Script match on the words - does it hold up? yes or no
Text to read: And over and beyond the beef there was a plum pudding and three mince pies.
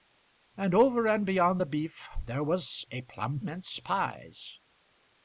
no